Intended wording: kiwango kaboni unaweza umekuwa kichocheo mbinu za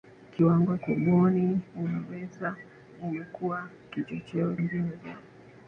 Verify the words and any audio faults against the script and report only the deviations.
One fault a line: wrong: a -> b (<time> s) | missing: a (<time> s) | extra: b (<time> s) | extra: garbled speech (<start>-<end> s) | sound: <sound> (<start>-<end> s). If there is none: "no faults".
no faults